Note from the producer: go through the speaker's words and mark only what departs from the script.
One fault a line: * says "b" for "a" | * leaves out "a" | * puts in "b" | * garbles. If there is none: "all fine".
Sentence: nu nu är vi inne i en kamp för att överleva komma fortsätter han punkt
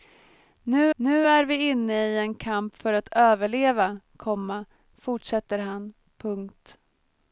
all fine